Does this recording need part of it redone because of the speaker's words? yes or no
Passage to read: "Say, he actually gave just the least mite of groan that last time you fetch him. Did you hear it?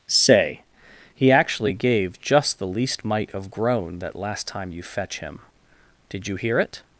no